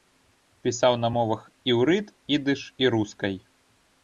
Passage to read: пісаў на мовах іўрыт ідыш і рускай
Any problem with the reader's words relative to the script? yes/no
no